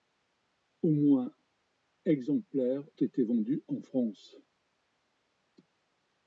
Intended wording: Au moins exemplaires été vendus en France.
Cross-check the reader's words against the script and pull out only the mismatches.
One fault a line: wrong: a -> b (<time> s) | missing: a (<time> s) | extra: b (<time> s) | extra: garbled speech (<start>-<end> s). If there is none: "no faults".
no faults